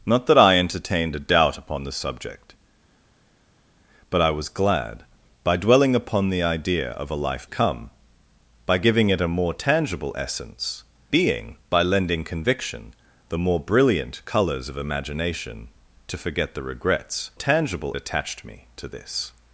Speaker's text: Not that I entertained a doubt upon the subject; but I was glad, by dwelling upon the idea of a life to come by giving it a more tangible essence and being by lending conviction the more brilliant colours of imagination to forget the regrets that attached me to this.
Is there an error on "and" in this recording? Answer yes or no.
yes